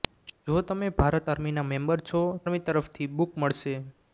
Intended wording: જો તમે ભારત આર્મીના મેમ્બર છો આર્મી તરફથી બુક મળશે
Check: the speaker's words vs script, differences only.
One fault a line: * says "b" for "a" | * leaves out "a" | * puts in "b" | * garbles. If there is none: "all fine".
all fine